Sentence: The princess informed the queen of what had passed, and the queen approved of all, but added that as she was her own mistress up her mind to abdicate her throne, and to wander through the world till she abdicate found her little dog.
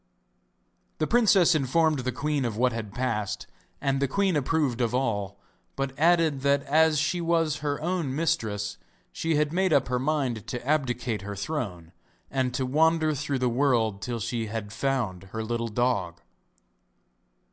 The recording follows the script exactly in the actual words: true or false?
false